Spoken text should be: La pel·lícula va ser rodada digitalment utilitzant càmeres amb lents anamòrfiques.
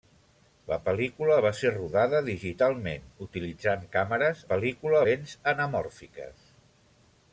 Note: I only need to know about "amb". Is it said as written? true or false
false